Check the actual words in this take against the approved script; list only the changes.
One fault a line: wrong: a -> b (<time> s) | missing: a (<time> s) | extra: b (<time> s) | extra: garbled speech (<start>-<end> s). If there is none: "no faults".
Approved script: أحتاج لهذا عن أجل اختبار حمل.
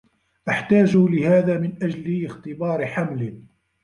wrong: عن -> من (1.6 s)